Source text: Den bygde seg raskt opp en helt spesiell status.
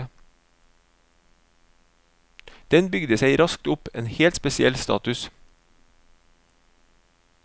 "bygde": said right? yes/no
yes